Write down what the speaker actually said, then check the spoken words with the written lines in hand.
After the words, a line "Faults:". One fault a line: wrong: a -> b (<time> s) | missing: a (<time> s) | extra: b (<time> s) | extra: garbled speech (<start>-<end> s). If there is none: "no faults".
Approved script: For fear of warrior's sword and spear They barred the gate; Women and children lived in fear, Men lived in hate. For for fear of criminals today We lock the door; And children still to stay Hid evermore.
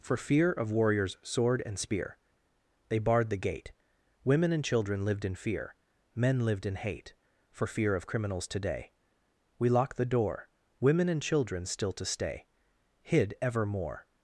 For fear of warrior's sword and spear They barred the gate; Women and children lived in fear, Men lived in hate. For fear of criminals today We lock the door; Women and children still to stay Hid evermore.
Faults:
missing: for (7.7 s)
extra: Women (10.8 s)